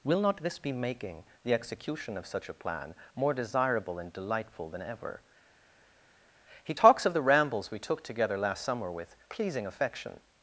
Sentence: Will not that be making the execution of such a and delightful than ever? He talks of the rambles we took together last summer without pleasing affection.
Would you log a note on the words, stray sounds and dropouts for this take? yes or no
yes